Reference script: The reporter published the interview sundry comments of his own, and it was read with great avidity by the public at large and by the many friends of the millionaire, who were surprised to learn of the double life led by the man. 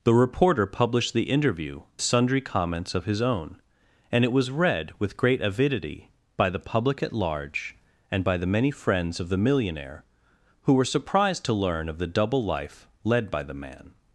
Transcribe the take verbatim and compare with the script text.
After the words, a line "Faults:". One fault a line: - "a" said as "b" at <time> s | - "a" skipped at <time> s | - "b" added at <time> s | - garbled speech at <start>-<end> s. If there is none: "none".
The reporter published the interview sundry comments of his own, and it was read with great avidity by the public at large and by the many friends of the millionaire, who were surprised to learn of the double life led by the man.
Faults:
none